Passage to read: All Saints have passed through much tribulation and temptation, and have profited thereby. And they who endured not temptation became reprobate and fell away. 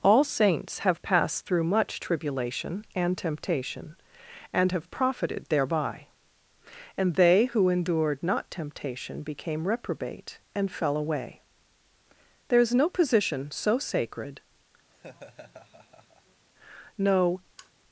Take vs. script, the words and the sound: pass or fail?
fail